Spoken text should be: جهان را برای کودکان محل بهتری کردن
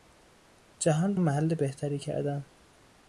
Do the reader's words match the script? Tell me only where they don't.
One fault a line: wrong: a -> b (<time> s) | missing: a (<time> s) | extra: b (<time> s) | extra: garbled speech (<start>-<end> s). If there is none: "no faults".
missing: را برای کودکان (1.2 s)